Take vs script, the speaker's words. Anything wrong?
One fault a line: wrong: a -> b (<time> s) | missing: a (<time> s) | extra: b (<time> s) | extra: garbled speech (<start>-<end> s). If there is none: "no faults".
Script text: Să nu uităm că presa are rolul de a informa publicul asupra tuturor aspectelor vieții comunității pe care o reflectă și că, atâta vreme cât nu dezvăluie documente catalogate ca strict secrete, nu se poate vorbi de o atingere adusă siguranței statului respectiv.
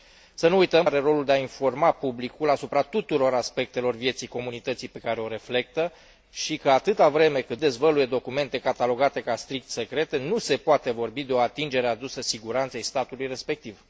missing: că presa (0.8 s)
missing: nu (7.6 s)